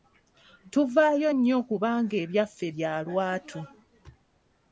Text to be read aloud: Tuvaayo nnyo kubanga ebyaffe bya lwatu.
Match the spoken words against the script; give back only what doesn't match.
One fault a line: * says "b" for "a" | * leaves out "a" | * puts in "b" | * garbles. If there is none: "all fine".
all fine